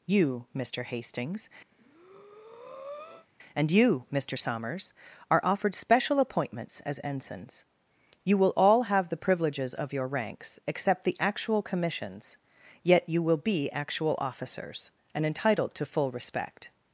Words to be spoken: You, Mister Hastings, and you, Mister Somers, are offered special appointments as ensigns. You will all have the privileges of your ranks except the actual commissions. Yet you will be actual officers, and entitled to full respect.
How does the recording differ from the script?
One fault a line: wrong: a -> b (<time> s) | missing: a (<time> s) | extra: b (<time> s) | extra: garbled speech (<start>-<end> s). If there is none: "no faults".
no faults